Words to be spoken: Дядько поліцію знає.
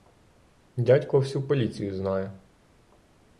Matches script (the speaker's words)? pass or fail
fail